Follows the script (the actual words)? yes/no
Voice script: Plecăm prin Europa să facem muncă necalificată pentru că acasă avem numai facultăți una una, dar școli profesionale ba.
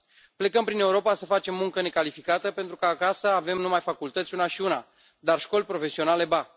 no